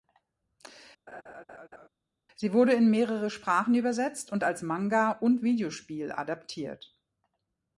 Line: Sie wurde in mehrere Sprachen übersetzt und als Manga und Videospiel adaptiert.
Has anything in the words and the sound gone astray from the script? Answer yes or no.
yes